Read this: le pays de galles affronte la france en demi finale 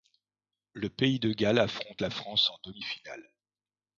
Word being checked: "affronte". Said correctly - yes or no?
yes